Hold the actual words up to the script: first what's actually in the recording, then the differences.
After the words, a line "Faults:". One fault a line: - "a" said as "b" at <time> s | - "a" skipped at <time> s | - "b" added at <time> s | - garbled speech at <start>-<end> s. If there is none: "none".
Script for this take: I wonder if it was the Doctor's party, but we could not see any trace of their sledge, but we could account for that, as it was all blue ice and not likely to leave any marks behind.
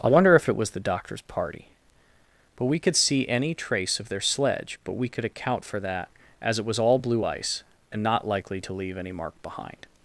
I wonder if it was the Doctor's party, but we could see any trace of their sledge, but we could account for that, as it was all blue ice and not likely to leave any mark behind.
Faults:
- "not" skipped at 3.0 s
- "marks" said as "mark" at 9.1 s